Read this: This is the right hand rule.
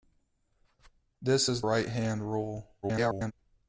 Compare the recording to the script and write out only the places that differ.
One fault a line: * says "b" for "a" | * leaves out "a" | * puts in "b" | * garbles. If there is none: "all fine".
* leaves out "the"
* garbles